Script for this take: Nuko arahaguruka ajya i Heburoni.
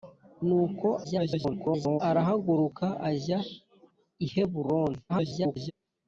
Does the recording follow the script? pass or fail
fail